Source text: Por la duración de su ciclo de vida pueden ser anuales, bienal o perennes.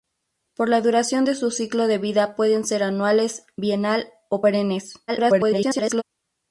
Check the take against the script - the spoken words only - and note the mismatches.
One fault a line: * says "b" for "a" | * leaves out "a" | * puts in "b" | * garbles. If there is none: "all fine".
* garbles